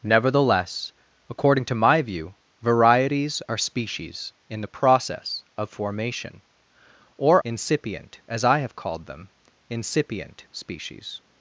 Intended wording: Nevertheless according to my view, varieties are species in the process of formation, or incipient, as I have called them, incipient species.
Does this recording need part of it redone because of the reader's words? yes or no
no